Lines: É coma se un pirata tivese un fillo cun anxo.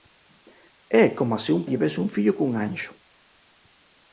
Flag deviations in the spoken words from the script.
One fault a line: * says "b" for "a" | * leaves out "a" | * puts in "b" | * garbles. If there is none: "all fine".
* leaves out "pirata"